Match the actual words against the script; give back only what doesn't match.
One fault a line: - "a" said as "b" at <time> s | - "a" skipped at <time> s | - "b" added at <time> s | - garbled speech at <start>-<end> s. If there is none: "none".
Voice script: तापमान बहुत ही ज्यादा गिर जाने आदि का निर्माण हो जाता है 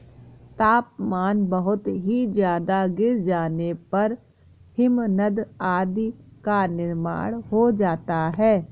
- "पर हिमनद" added at 3.9 s